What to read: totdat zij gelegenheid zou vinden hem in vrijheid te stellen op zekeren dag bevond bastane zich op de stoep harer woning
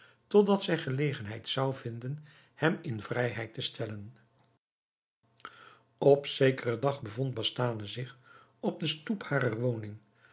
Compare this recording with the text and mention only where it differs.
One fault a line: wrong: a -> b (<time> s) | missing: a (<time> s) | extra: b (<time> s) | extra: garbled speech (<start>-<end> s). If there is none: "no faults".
no faults